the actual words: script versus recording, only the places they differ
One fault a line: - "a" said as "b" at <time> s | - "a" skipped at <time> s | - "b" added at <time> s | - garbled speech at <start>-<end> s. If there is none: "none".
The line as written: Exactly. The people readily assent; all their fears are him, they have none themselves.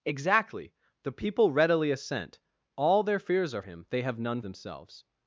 none